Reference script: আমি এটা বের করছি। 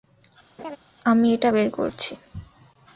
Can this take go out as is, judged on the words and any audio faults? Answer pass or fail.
fail